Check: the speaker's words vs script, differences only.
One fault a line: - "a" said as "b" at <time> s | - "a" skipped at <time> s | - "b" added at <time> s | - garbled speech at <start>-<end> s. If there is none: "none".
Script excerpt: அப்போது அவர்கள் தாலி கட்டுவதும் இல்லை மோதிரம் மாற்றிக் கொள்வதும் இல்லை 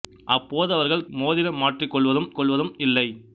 - "தாலி கட்டுவதும் இல்லை" skipped at 1.1 s
- "கொள்வதும்" added at 2.4 s